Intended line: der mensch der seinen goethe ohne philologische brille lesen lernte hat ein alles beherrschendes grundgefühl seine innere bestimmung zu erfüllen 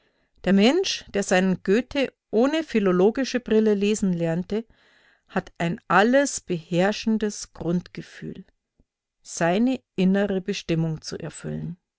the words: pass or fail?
pass